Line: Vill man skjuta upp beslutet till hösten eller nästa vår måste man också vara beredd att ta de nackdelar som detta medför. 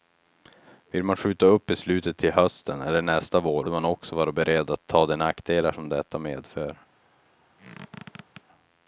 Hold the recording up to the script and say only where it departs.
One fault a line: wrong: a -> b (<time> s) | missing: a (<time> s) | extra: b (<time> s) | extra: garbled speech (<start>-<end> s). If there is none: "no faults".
missing: måste (3.7 s)